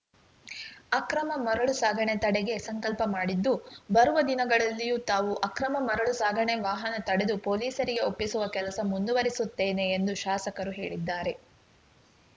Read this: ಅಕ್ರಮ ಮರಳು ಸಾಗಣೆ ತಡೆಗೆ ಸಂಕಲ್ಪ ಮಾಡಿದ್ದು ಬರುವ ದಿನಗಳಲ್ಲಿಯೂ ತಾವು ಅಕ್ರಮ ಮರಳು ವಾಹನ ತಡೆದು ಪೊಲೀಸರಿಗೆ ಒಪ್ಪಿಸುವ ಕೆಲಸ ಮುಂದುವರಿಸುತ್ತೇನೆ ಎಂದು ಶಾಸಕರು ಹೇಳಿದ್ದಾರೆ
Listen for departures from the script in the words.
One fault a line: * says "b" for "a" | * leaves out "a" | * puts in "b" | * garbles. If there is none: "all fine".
* puts in "ಸಾಗಣೆ"